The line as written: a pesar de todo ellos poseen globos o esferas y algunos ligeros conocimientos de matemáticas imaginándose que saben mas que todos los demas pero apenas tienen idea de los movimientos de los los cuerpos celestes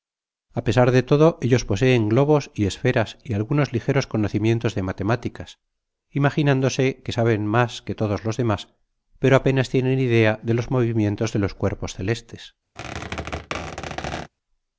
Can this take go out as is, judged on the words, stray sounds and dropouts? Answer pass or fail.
fail